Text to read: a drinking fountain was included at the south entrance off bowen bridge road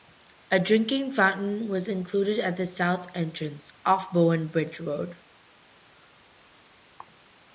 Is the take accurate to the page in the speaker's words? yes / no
yes